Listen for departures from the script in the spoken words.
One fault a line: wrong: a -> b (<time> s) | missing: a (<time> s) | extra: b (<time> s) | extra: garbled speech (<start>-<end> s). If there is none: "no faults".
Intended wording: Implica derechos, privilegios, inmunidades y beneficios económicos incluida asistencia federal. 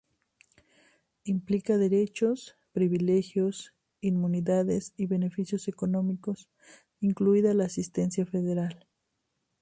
extra: la (7.5 s)